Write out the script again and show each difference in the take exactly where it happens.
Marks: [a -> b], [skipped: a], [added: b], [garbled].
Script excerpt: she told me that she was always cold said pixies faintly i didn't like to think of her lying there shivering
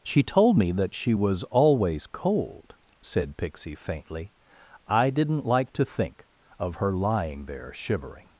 she told me that she was always cold said [pixies -> pixie] faintly i didn't like to think of her lying there shivering